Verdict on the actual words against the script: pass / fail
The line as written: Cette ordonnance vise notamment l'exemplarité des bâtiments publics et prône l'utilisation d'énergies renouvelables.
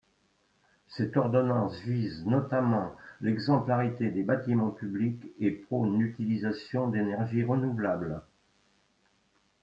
pass